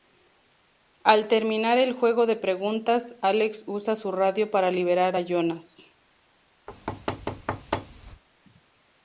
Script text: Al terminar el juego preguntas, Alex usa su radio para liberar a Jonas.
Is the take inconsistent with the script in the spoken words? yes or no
yes